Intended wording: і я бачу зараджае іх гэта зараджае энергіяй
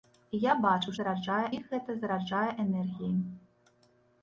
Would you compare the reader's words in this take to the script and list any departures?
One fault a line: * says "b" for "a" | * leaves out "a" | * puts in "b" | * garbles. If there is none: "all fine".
all fine